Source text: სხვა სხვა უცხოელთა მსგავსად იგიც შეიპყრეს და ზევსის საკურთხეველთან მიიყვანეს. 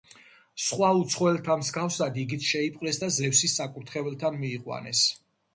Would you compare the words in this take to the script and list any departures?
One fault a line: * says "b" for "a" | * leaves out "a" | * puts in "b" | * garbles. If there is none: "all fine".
* leaves out "სხვა"